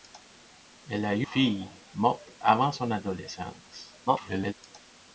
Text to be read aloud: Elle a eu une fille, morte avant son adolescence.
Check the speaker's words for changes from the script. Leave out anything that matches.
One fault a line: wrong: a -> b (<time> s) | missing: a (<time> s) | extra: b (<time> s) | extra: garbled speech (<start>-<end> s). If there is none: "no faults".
missing: une (1.3 s)
extra: garbled speech (4.1-4.5 s)